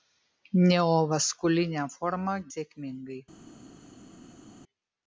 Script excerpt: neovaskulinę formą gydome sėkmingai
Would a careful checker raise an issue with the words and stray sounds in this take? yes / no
yes